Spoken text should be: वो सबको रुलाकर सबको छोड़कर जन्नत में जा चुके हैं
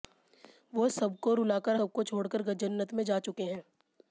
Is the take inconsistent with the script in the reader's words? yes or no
no